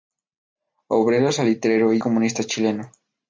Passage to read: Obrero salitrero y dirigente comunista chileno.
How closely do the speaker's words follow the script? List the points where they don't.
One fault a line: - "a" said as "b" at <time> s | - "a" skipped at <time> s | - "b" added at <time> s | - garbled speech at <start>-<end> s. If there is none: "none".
- "dirigente" skipped at 2.0 s